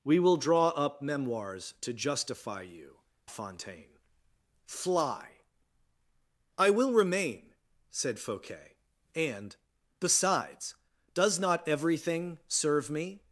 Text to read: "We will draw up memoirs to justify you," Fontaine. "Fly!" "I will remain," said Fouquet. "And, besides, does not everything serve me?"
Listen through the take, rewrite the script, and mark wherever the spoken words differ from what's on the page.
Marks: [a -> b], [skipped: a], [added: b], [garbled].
"We will draw up memoirs to justify you," Fontaine. "Fly!" "I will remain," said Fouquet. "And, besides, does not everything serve me?"